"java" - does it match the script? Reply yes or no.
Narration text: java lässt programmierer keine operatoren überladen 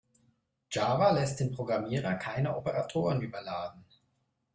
yes